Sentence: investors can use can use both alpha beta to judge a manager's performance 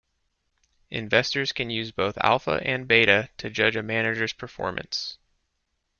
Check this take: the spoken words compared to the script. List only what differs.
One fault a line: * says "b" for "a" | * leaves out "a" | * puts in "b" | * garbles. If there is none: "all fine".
* leaves out "can use"
* puts in "and"